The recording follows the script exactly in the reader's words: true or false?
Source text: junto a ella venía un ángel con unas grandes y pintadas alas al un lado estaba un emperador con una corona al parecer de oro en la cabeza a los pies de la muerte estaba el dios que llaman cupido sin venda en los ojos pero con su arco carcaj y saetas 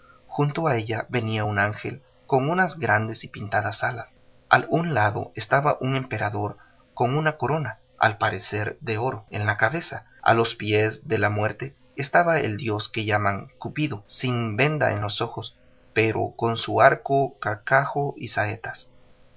true